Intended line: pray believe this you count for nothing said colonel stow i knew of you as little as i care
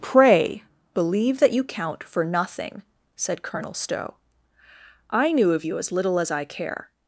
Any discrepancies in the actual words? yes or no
yes